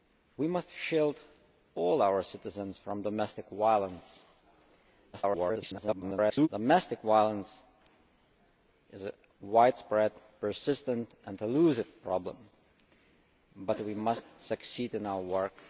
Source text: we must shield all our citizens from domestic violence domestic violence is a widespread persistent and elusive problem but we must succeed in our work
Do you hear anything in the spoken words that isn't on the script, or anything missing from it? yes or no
yes